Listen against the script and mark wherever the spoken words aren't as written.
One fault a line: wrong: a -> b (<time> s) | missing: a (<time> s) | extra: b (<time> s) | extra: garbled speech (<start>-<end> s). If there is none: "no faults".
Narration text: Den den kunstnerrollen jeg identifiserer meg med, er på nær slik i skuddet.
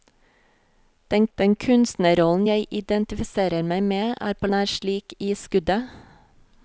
no faults